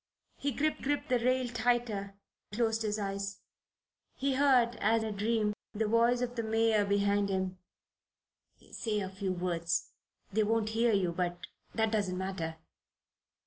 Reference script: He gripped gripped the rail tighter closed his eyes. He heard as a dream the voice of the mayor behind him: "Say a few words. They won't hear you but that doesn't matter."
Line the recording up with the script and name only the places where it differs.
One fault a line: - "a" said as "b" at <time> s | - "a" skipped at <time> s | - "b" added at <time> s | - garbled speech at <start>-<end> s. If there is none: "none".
none